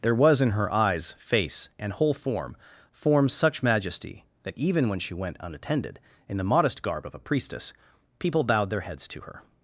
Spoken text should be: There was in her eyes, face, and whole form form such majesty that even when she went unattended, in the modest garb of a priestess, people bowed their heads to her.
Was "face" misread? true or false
false